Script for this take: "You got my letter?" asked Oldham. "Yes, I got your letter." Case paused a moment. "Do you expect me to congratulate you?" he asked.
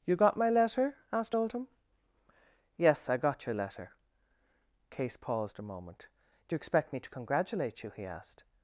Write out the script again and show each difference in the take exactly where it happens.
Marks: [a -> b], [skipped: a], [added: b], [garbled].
"You got my letter?" asked Oldham. "Yes, I got your letter." Case paused a moment. "Do you expect me to congratulate you?" he asked.